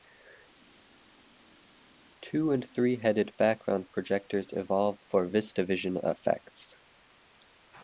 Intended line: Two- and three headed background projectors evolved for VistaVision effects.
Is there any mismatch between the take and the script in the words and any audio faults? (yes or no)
no